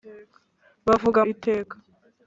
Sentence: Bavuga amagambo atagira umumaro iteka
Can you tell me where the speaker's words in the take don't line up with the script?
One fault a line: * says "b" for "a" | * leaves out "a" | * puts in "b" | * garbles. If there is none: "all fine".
* leaves out "amagambo atagira umumaro"